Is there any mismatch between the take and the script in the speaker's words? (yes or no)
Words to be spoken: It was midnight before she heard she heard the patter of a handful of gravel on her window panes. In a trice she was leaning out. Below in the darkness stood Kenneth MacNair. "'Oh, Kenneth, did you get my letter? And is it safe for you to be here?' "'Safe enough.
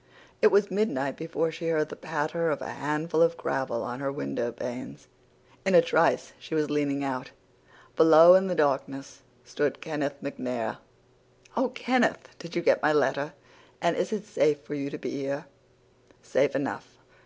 yes